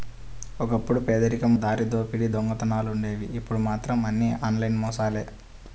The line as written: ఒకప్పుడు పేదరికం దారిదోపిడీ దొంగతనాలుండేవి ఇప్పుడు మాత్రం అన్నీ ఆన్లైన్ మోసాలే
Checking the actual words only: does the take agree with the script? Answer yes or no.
yes